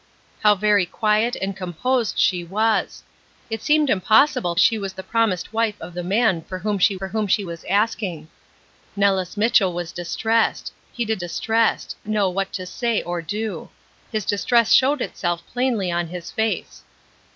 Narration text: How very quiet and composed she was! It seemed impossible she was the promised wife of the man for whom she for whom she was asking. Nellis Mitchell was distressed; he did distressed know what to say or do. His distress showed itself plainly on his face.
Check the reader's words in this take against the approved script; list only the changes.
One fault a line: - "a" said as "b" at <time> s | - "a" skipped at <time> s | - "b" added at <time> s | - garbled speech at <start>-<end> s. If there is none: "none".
none